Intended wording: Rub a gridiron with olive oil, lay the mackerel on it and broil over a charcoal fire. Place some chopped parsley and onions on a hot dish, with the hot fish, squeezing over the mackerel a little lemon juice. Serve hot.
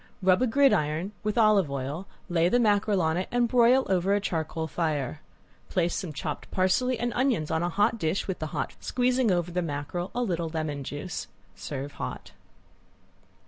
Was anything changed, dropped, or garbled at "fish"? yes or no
yes